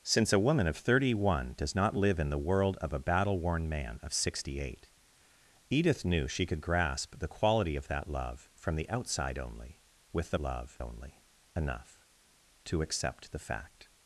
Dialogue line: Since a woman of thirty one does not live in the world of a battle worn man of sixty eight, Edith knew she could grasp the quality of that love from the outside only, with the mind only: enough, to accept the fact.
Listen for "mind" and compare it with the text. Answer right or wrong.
wrong